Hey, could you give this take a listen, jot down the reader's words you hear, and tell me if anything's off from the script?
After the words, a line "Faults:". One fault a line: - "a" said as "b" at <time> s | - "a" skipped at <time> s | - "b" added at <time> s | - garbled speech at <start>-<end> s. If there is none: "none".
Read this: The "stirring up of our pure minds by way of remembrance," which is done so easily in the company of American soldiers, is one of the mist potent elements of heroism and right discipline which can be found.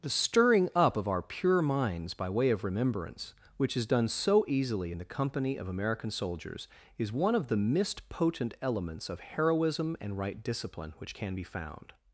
The "stirring up of our pure minds by way of remembrance," which is done so easily in the company of American soldiers, is one of the mist potent elements of heroism and right discipline which can be found.
Faults:
none